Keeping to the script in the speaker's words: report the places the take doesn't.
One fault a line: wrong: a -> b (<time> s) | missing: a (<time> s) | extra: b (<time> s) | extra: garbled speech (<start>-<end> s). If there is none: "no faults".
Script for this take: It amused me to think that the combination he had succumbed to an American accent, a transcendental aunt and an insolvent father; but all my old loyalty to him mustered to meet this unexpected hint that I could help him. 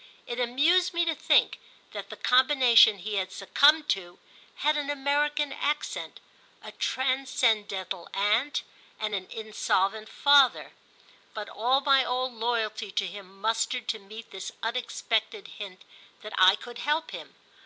extra: had (4.5 s)